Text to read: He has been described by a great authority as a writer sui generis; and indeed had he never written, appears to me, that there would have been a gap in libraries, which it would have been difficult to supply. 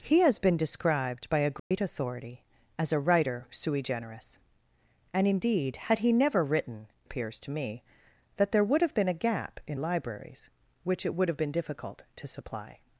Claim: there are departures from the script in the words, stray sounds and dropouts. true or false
true